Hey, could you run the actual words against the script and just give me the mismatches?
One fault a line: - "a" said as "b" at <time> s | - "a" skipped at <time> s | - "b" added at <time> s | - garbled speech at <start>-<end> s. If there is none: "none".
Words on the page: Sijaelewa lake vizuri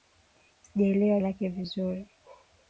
none